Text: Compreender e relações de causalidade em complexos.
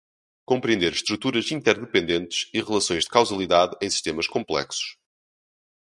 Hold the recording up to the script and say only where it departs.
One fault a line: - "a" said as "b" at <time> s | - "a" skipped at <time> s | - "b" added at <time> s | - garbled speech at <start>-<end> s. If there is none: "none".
- "estruturas interdependentes" added at 0.9 s
- "sistemas" added at 3.9 s